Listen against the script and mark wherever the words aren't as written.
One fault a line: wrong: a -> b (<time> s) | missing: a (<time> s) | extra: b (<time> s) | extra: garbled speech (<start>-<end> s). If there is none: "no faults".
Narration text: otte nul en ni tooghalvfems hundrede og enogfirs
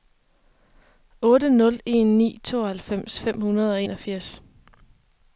extra: fem (3.2 s)